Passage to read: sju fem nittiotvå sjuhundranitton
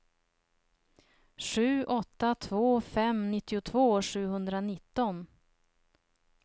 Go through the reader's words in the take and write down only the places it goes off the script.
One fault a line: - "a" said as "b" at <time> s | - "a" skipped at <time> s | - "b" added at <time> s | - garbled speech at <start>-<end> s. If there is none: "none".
- "åtta två" added at 1.8 s